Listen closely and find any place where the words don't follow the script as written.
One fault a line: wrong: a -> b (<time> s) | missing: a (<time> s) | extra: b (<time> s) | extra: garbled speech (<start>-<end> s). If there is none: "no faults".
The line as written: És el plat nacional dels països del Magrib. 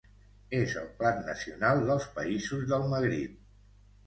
no faults